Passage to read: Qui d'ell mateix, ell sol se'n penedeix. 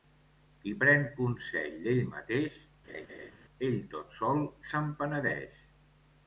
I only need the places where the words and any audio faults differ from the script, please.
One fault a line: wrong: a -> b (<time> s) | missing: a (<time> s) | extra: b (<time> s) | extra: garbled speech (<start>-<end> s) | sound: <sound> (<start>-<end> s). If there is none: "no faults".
extra: pren consell (0.8 s)
sound: laugh (2.9-3.3 s)
extra: tot (4.0 s)